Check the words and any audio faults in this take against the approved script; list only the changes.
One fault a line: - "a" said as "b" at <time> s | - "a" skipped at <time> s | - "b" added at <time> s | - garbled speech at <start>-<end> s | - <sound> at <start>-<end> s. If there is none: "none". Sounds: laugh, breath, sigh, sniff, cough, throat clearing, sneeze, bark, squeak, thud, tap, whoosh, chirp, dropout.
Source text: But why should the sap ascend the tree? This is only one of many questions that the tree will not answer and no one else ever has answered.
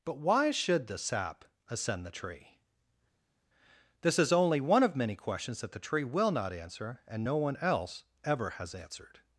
none